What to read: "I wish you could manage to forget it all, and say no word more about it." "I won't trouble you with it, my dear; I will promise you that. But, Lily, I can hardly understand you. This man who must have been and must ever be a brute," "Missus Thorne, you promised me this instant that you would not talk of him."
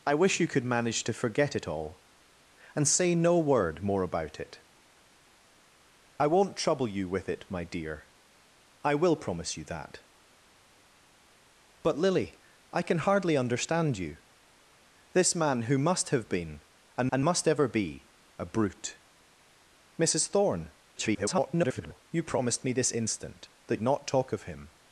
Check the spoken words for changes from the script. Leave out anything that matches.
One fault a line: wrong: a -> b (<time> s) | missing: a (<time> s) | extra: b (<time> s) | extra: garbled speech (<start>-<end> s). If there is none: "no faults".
extra: and (17.1 s)
extra: garbled speech (20.9-22.0 s)
missing: you would (23.8 s)